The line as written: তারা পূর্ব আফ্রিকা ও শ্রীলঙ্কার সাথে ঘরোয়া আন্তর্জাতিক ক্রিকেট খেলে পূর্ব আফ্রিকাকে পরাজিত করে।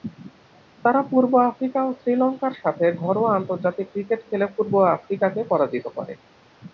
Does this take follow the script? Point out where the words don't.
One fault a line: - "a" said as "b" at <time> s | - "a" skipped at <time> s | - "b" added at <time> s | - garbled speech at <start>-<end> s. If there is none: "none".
none